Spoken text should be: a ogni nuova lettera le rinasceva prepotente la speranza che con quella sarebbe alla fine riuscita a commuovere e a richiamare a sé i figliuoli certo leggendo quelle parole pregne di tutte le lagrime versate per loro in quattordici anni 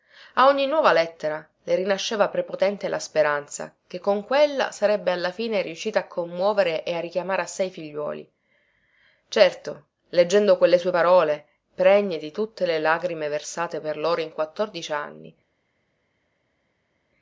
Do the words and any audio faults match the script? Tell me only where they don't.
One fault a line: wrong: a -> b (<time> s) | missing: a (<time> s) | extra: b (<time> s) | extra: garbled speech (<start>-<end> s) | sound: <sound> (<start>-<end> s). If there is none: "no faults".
extra: sue (10.8 s)